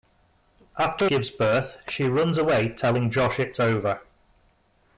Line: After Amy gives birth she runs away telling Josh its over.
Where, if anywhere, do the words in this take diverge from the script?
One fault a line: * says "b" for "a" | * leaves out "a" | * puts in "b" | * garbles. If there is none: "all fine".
* leaves out "Amy"